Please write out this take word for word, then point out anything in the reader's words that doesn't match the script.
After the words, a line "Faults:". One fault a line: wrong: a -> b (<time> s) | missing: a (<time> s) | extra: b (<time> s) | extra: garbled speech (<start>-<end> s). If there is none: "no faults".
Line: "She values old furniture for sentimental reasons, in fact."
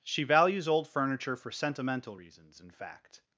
"She values old furniture for sentimental reasons, in fact."
Faults:
no faults